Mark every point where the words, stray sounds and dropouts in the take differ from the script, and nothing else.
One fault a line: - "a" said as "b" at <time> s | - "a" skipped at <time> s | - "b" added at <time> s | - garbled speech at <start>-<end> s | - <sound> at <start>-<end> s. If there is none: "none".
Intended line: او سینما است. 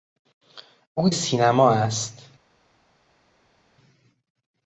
none